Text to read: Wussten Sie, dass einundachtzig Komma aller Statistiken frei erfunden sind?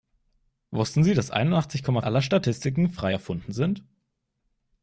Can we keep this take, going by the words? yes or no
yes